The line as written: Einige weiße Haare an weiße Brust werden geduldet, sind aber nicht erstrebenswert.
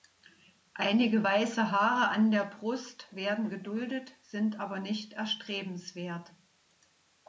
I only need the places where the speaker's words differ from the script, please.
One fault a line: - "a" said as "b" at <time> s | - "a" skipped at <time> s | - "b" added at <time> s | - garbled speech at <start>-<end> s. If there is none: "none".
- "weiße" said as "der" at 2.3 s